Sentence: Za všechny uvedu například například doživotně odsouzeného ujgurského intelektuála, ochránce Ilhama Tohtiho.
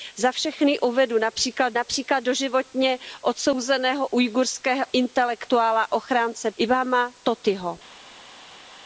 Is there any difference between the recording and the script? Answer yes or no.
no